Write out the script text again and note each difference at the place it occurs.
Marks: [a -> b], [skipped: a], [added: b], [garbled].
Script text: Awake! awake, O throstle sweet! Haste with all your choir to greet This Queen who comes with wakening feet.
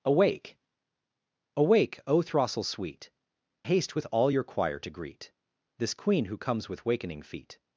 Awake! awake, O throstle sweet! Haste with all your choir to greet This Queen who comes with wakening feet.